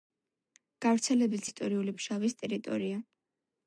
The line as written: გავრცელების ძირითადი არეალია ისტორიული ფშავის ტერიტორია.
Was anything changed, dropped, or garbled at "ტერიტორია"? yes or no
no